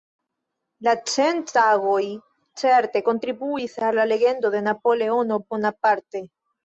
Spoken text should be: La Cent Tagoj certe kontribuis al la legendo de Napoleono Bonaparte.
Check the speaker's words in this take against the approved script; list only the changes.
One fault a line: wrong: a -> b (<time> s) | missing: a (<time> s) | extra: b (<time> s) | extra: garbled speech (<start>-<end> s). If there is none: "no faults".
no faults